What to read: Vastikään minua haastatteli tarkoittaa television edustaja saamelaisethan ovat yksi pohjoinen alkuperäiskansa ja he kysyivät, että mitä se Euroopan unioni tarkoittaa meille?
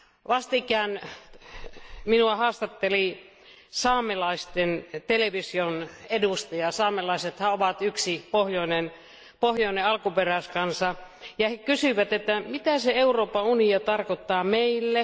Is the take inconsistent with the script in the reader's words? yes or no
yes